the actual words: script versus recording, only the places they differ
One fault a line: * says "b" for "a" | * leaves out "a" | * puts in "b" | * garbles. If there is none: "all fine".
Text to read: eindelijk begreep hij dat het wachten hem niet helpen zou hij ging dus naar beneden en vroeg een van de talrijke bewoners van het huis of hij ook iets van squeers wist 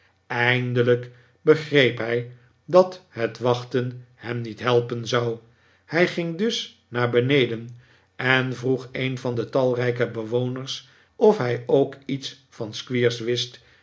* leaves out "van het huis"